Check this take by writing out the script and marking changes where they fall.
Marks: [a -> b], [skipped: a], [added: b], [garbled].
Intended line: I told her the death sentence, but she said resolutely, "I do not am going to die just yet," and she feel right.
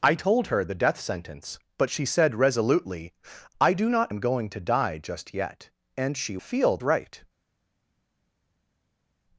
I told her the death sentence, but she said resolutely, "I do not am going to die just yet," and she feel right.